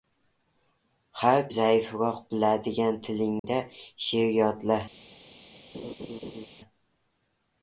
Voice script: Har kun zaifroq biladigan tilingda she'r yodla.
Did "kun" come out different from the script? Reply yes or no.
yes